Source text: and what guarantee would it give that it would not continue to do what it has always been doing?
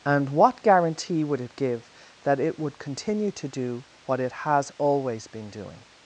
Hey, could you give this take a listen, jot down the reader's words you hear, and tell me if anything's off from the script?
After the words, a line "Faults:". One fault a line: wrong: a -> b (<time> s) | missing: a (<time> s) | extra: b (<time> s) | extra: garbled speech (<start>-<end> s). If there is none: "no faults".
and what guarantee would it give that it would continue to do what it has always been doing?
Faults:
missing: not (2.8 s)